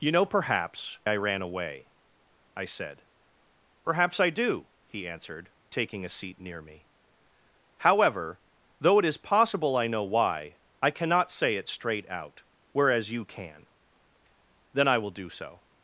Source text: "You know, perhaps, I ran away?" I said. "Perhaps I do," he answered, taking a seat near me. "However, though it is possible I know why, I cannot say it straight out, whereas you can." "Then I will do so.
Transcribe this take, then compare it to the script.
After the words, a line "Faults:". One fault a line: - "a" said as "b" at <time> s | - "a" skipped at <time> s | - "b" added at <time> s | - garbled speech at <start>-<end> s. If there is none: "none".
"You know, perhaps, I ran away?" I said. "Perhaps I do," he answered, taking a seat near me. "However, though it is possible I know why, I cannot say it straight out, whereas you can." "Then I will do so.
Faults:
none